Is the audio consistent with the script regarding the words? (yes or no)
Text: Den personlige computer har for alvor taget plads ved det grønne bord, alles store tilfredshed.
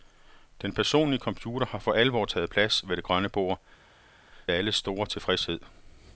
yes